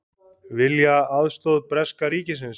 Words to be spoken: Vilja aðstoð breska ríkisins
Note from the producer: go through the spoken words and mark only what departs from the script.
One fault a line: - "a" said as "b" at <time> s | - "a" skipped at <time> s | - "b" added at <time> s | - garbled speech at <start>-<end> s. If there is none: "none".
none